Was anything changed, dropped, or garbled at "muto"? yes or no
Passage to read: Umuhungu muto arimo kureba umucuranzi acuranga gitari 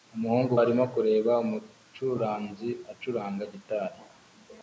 yes